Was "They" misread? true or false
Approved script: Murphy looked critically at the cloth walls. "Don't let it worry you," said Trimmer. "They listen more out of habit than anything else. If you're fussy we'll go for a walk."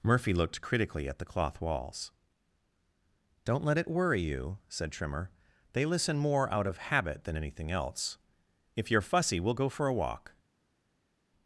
false